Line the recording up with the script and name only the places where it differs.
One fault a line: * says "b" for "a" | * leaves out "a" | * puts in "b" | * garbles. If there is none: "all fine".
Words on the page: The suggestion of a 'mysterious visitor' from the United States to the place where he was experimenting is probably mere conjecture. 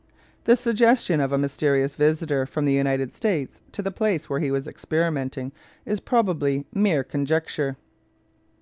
all fine